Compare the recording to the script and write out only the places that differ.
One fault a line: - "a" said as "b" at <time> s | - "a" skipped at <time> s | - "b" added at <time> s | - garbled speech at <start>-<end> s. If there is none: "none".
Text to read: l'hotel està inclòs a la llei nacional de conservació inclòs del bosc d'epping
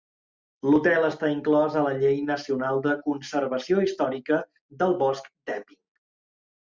- "inclòs" said as "històrica" at 3.9 s